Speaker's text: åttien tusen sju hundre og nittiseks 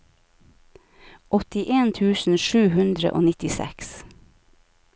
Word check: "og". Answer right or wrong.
right